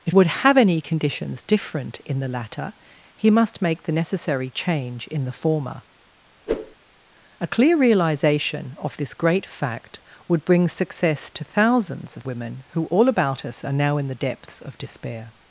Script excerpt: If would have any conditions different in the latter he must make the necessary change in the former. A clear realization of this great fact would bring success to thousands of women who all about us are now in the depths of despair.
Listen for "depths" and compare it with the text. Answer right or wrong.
right